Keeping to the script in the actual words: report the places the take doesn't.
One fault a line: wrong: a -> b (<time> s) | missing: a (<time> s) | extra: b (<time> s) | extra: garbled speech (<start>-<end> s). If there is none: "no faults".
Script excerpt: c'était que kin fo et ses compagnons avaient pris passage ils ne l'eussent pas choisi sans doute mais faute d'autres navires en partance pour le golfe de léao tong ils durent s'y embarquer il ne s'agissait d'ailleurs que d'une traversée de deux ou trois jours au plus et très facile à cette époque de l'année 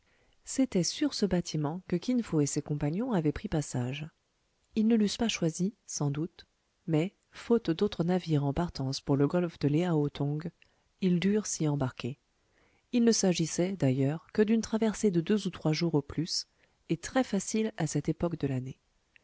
extra: sur ce bâtiment (0.8 s)